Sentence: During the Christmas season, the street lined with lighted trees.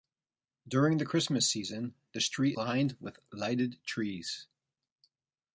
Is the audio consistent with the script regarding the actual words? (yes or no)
yes